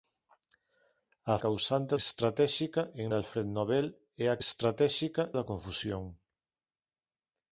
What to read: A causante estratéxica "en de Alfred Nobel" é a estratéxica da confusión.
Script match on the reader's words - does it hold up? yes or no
yes